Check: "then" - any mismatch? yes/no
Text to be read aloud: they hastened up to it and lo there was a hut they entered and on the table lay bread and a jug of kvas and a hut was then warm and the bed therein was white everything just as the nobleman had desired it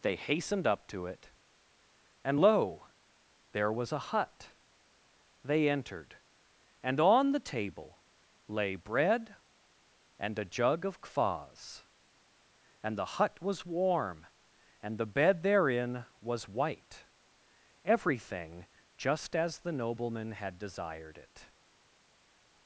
yes